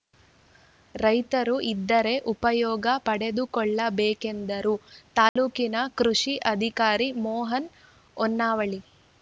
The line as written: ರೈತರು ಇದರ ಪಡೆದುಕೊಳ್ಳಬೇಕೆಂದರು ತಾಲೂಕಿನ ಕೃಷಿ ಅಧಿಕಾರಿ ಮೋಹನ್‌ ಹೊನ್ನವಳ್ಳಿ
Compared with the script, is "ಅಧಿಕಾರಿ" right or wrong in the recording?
right